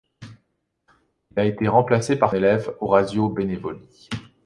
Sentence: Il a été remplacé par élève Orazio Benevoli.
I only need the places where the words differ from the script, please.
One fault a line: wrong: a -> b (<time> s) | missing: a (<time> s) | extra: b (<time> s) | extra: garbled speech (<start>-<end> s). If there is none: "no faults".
no faults